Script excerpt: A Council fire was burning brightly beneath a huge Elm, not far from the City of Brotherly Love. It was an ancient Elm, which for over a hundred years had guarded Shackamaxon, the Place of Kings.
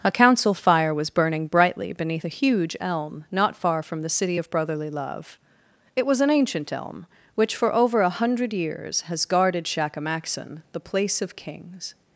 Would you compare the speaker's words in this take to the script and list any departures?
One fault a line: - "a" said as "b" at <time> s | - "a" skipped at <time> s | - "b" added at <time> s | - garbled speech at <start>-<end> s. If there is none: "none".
- "had" said as "has" at 9.0 s